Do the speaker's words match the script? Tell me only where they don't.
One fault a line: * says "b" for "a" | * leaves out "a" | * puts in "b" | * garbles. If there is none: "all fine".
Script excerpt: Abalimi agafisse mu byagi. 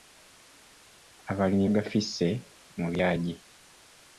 all fine